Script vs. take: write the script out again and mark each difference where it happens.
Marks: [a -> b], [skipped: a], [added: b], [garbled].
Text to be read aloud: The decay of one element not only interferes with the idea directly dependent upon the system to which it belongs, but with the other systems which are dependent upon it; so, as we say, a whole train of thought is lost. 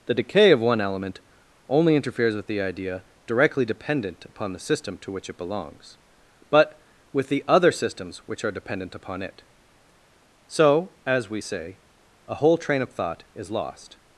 The decay of one element [skipped: not] only interferes with the idea directly dependent upon the system to which it belongs, but with the other systems which are dependent upon it; so, as we say, a whole train of thought is lost.